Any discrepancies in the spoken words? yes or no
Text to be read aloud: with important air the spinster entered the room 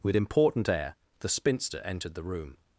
no